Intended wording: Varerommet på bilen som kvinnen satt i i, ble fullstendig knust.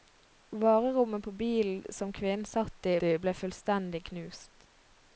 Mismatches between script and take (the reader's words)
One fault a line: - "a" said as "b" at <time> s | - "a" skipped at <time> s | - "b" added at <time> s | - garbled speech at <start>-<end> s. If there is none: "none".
none